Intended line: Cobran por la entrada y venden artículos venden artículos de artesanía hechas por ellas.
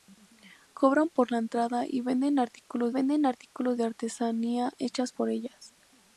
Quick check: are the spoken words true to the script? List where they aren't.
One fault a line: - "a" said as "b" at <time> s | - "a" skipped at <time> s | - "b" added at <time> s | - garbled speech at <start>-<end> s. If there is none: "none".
none